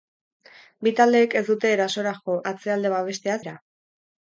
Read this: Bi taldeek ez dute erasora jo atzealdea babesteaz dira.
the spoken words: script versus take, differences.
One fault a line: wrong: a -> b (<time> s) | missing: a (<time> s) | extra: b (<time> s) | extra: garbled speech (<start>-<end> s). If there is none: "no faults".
no faults